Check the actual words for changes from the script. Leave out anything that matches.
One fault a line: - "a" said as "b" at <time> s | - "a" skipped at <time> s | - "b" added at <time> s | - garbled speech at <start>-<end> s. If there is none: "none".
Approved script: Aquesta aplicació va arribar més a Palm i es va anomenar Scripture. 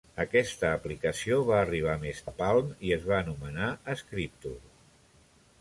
none